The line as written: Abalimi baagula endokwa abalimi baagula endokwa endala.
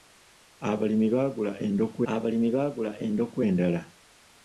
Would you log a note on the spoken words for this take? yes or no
no